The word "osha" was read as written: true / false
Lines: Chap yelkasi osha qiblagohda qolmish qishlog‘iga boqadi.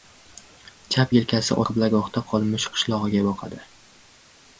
false